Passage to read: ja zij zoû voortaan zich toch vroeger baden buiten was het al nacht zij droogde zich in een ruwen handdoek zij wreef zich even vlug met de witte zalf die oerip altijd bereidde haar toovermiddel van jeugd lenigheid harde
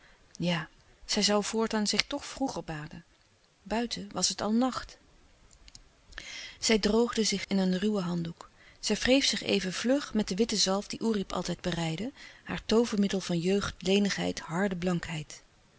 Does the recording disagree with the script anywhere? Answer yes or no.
no